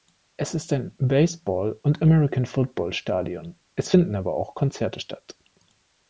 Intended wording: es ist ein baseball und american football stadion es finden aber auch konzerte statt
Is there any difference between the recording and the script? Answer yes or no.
no